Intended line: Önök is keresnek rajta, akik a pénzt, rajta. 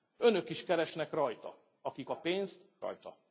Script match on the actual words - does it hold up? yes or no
yes